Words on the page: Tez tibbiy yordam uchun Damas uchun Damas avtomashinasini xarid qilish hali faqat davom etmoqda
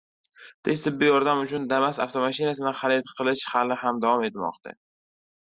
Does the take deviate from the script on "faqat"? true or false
true